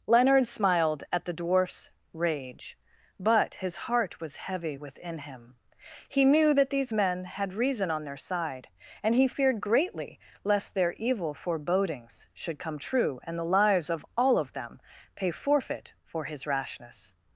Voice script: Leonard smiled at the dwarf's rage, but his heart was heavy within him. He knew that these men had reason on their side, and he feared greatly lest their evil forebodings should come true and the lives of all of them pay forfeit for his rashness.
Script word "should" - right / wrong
right